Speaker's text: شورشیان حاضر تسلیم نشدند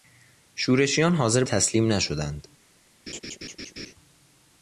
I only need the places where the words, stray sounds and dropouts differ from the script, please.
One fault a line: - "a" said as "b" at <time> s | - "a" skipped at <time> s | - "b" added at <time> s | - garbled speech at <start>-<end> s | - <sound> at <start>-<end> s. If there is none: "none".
- laugh at 3.1-3.9 s